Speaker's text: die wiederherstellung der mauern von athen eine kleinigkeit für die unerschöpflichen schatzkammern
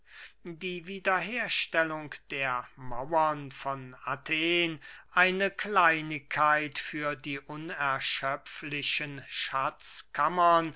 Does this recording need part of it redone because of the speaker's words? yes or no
no